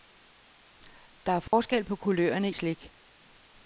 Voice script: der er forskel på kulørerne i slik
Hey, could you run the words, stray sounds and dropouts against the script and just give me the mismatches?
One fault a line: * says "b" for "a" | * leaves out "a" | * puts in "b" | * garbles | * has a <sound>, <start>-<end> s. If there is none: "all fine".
* has a dropout, 1.5-1.5 s
* leaves out "i"